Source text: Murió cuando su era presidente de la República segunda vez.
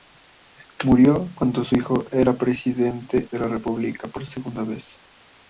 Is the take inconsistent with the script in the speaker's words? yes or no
yes